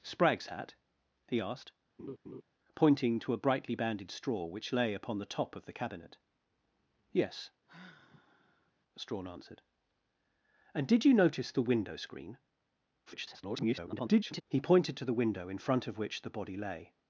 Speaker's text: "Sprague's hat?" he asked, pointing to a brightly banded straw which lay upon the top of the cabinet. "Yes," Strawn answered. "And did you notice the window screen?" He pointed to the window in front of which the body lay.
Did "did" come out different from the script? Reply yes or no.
no